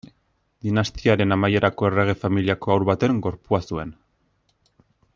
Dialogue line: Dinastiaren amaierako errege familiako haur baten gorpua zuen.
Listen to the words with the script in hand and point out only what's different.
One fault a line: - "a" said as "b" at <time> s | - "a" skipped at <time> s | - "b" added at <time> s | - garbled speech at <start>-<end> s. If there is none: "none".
none